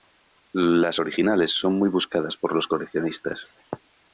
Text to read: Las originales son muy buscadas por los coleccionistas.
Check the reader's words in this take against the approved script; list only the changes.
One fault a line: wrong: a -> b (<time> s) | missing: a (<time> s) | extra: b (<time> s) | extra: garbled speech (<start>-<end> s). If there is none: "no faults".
no faults